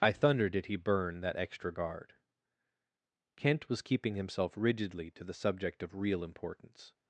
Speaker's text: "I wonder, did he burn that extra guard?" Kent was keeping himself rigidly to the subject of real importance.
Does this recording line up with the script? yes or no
no